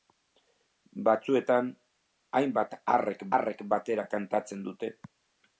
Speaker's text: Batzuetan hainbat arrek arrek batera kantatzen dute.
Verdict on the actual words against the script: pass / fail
pass